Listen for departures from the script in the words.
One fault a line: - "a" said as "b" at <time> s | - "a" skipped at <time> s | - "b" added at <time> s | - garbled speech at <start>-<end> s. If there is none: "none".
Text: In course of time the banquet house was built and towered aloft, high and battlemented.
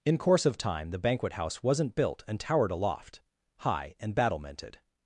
- "was" said as "wasn't" at 1.6 s